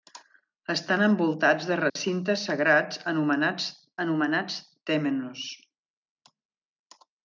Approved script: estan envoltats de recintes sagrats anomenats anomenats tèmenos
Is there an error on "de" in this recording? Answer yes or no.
no